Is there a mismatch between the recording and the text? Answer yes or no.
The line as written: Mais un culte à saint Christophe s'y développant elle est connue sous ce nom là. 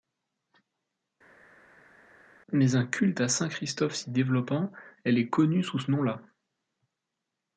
no